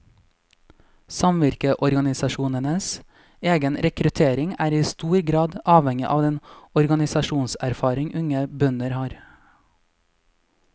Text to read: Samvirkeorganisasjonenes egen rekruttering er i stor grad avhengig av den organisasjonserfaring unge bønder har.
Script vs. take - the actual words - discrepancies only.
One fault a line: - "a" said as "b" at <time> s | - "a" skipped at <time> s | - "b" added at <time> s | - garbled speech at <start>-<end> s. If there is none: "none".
none